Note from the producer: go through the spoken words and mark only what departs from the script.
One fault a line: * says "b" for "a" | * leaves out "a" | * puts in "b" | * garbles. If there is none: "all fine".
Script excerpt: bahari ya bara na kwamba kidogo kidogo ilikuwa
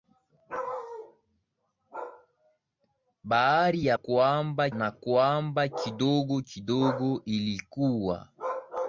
* says "kwamba" for "bara"